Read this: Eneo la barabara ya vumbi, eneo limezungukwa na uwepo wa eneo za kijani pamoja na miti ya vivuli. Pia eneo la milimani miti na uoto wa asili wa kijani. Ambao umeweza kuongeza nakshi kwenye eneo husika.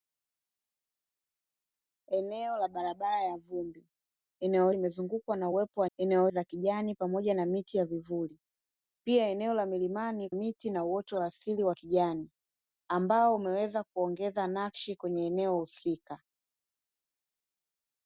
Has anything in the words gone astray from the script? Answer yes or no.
no